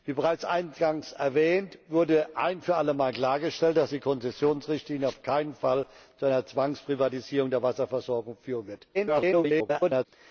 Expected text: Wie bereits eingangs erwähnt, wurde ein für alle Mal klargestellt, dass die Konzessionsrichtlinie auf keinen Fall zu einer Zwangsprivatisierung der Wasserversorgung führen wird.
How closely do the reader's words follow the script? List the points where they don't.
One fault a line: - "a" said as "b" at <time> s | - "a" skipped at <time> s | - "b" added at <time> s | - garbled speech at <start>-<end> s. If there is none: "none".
- garbled speech at 8.9-10.1 s